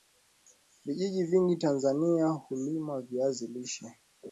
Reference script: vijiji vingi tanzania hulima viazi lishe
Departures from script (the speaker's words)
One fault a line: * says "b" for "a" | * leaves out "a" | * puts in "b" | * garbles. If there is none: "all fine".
all fine